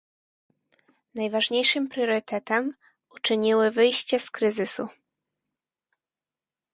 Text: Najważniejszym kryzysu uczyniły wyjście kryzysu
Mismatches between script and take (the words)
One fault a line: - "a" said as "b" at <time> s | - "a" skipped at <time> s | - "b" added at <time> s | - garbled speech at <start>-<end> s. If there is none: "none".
- "kryzysu" said as "priorytetem" at 1.9 s
- "z" added at 4.2 s